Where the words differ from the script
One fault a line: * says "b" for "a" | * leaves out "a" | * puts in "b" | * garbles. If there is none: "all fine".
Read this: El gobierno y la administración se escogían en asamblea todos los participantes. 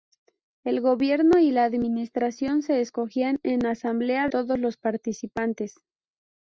all fine